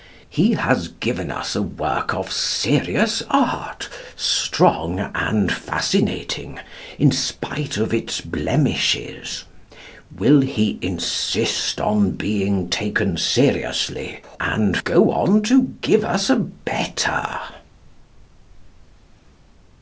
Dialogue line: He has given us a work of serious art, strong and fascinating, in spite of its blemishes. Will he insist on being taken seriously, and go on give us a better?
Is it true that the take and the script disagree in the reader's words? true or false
true